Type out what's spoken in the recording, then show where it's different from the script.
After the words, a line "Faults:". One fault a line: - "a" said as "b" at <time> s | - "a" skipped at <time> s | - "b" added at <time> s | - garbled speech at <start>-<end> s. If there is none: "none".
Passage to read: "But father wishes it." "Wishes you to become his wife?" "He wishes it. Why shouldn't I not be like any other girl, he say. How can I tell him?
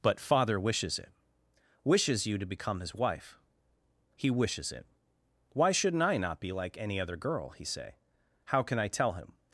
"But father wishes it." "Wishes you to become his wife?" "He wishes it. Why shouldn't I not be like any other girl, he say. How can I tell him?
Faults:
none